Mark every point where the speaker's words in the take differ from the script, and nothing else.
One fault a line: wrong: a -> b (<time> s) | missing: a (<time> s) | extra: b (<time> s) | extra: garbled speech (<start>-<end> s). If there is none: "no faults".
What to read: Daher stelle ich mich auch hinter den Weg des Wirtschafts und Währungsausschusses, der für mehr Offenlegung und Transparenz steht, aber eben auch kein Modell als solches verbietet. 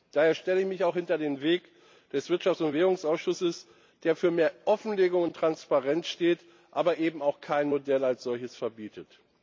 no faults